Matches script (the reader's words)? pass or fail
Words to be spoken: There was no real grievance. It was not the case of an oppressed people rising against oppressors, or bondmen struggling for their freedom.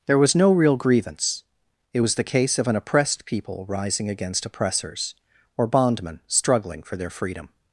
fail